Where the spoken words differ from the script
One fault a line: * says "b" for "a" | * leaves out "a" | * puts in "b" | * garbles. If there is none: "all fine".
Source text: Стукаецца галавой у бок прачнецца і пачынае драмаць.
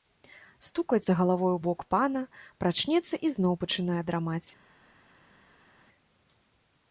* puts in "пана"
* puts in "зноў"